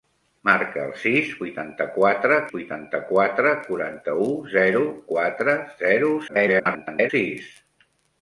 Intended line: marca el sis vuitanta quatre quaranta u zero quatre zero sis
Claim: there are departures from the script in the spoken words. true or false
true